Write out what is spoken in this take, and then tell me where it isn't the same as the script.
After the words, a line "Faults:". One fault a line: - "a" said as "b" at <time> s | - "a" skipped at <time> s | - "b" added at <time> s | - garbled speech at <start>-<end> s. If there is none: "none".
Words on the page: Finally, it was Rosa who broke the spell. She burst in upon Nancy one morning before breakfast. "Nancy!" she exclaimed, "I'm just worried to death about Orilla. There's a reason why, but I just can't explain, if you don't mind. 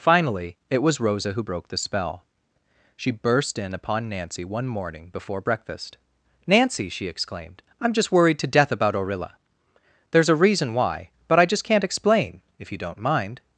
Finally, it was Rosa who broke the spell. She burst in upon Nancy one morning before breakfast. "Nancy!" she exclaimed, "I'm just worried to death about Orilla. There's a reason why, but I just can't explain, if you don't mind.
Faults:
none